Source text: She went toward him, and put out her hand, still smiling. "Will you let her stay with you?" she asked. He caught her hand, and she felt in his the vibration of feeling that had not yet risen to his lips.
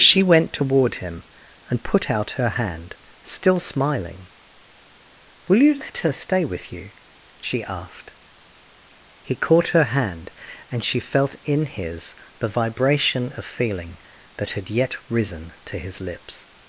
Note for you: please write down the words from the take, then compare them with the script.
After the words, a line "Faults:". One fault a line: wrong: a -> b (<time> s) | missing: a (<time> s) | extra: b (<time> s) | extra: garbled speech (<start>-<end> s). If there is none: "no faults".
She went toward him, and put out her hand, still smiling. "Will you let her stay with you?" she asked. He caught her hand, and she felt in his the vibration of feeling that had yet risen to his lips.
Faults:
missing: not (14.7 s)